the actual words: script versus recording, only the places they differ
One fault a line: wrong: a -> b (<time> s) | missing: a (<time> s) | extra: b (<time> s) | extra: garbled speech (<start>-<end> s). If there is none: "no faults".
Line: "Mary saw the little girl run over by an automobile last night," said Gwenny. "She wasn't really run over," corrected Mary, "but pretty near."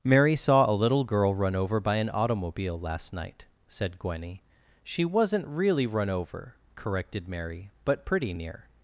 wrong: the -> a (0.7 s)